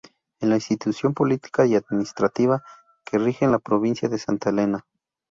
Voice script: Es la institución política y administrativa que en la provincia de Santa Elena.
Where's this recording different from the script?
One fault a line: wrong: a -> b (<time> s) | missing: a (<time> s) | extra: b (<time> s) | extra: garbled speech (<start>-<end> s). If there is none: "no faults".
extra: rige (3.2 s)